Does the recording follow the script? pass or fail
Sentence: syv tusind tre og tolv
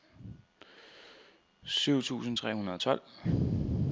fail